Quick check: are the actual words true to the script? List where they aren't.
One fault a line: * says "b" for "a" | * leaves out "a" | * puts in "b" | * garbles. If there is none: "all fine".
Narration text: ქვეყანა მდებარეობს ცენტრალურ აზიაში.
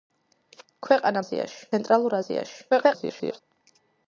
* says "აზიაში" for "მდებარეობს"
* garbles